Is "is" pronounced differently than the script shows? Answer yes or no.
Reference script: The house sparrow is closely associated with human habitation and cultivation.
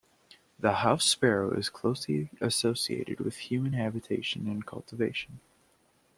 no